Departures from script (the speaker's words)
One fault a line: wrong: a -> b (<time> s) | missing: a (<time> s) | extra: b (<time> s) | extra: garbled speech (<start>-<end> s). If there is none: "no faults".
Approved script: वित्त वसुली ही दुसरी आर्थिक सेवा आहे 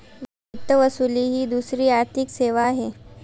no faults